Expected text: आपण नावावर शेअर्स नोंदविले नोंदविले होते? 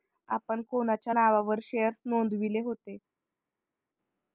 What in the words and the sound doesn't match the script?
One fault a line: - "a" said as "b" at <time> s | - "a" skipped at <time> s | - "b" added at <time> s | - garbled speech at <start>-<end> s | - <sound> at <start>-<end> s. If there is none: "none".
- "कोणाच्या" added at 0.7 s
- "नोंदविले" skipped at 2.6 s